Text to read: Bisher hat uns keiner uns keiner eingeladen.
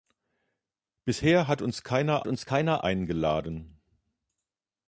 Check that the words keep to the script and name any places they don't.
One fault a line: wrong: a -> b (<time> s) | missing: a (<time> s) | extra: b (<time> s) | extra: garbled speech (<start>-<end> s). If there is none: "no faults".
no faults